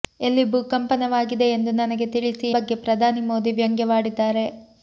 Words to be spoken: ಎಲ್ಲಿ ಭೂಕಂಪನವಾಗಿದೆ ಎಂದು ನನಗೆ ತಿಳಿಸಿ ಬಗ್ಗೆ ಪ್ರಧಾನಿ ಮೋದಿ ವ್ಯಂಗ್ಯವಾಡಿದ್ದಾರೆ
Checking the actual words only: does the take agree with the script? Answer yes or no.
yes